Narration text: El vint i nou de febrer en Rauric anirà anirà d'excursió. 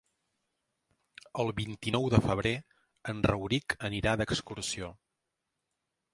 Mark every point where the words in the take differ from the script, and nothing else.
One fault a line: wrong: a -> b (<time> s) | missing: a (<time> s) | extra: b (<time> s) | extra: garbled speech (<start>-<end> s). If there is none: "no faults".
missing: anirà (4.2 s)